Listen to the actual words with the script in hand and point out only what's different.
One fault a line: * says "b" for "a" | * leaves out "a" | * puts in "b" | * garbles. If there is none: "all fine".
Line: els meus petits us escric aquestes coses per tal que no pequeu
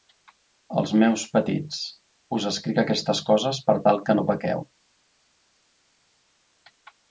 all fine